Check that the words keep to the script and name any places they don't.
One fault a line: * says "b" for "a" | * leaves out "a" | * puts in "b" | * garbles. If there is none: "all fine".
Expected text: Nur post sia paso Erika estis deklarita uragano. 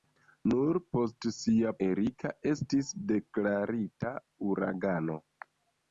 * leaves out "paso"